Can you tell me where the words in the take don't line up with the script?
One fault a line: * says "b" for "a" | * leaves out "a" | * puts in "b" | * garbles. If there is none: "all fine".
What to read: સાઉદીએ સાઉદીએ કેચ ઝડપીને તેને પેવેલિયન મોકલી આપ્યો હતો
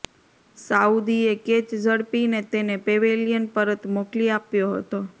* leaves out "સાઉદીએ"
* puts in "પરત"